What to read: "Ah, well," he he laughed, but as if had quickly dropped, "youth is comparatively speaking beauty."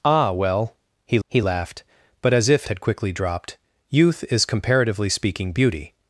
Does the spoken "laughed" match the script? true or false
true